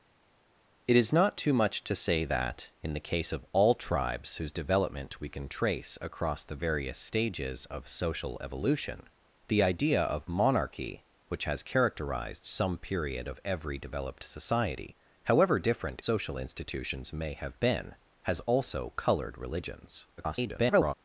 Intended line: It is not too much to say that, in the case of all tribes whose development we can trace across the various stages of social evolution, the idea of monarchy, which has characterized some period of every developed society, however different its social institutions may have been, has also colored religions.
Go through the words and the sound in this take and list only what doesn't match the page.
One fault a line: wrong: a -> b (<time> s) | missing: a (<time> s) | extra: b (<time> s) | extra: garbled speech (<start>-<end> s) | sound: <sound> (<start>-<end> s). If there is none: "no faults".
missing: its (16.0 s)
extra: garbled speech (20.2-20.9 s)